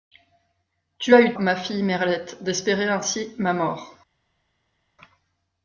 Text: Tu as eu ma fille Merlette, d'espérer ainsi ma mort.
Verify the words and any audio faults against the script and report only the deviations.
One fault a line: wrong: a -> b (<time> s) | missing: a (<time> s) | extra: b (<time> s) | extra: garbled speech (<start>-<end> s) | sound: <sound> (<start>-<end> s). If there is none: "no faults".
no faults